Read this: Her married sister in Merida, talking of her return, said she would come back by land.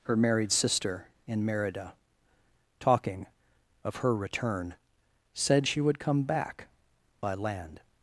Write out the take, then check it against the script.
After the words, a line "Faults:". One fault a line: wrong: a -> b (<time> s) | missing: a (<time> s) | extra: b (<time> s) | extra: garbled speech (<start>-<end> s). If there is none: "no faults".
Her married sister in Merida, talking of her return, said she would come back by land.
Faults:
no faults